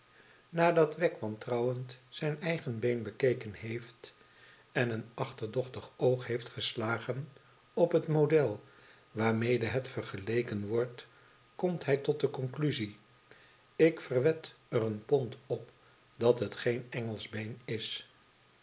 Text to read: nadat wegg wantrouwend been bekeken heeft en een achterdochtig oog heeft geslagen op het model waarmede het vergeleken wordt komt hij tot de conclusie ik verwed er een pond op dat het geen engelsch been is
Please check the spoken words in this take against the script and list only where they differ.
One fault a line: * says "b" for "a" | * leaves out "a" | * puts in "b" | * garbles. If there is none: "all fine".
* puts in "zijn eigen"